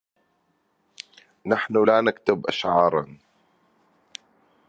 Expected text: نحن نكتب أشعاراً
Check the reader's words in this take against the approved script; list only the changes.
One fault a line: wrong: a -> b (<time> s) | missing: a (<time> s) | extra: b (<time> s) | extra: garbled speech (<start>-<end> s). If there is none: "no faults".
extra: لا (1.9 s)